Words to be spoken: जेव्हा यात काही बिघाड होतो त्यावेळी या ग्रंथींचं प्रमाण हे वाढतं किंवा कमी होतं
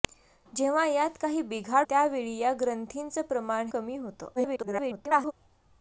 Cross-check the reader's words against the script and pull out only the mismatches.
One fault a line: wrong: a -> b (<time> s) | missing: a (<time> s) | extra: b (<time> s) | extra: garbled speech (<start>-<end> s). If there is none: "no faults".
missing: होतो (1.9 s)
missing: हे वाढतं किंवा (3.7 s)
extra: garbled speech (4.4-5.3 s)